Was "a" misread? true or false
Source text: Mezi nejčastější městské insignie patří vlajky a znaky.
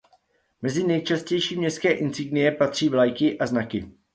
false